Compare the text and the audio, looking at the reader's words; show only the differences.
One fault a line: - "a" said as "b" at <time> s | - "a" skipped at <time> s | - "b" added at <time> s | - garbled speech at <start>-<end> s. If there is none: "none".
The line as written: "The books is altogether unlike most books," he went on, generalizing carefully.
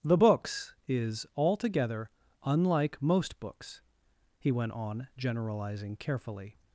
none